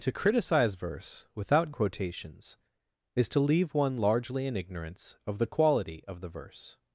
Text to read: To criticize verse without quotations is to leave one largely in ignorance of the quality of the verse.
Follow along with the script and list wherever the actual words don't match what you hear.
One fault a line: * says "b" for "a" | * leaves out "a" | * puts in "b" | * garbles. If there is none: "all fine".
all fine